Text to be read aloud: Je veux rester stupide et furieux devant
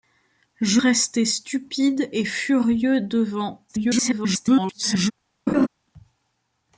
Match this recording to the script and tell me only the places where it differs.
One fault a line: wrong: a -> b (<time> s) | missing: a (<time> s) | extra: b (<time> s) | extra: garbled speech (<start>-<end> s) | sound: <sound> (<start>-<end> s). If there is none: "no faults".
missing: veux (0.8 s)
extra: garbled speech (3.7-5.1 s)
sound: laugh (5.5-5.7 s)